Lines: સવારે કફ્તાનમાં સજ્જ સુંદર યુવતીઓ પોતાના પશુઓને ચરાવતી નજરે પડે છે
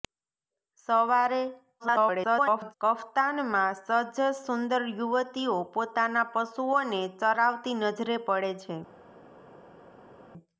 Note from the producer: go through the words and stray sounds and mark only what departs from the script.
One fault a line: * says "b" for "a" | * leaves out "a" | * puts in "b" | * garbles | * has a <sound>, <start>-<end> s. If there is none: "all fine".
* garbles